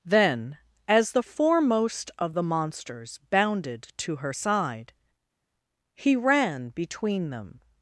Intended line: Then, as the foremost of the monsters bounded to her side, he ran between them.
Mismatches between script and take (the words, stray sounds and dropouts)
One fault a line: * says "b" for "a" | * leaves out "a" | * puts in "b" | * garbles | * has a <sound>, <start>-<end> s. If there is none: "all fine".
all fine